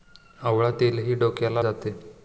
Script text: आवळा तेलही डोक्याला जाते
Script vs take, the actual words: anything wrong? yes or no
no